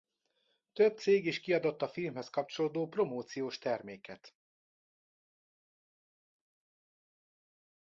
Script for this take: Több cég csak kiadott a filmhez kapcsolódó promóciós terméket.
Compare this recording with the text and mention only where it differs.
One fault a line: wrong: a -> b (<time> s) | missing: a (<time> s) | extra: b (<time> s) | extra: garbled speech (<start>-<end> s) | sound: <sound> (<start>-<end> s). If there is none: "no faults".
wrong: csak -> is (1.3 s)